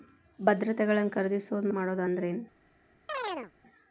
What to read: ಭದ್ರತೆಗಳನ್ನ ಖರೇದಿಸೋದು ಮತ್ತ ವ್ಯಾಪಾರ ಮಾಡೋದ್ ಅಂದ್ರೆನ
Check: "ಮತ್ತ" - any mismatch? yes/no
yes